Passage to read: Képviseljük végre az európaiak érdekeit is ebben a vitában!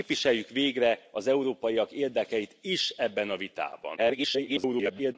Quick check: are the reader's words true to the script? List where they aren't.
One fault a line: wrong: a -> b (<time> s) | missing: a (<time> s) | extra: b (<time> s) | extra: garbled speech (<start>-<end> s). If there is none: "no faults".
extra: garbled speech (4.0-5.2 s)